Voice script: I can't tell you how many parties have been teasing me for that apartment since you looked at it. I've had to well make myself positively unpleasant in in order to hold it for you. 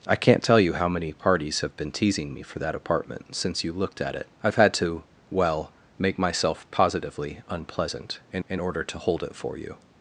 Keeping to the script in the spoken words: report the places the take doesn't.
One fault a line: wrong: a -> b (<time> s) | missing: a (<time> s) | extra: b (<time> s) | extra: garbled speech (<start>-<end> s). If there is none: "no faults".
no faults